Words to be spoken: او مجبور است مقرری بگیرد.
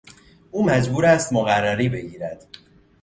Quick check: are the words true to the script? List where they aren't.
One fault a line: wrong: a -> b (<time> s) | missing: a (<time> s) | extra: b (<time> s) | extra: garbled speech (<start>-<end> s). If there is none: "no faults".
no faults